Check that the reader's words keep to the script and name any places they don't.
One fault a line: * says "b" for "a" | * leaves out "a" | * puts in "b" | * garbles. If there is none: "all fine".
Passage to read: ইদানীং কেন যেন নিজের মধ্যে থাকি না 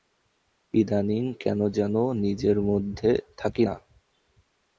all fine